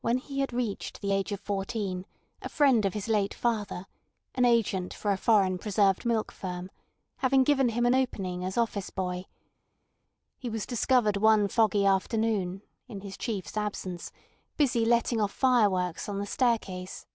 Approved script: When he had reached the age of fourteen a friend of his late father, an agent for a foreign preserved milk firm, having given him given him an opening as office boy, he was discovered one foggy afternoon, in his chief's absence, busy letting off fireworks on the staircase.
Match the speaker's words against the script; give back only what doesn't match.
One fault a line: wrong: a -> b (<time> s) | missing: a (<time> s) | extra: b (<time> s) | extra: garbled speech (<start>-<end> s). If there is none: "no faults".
missing: given him (7.8 s)